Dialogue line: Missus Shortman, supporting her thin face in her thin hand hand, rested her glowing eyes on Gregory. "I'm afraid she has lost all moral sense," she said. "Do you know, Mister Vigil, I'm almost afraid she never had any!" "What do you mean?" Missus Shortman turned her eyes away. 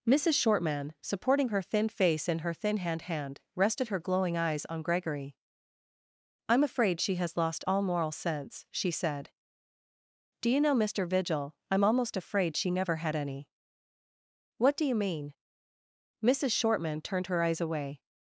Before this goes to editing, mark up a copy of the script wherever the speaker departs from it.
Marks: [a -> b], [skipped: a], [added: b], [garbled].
Missus Shortman, supporting her thin face in her thin hand hand, rested her glowing eyes on Gregory. "I'm afraid she has lost all moral sense," she said. "Do you know, Mister Vigil, I'm almost afraid she never had any!" "What do you mean?" Missus Shortman turned her eyes away.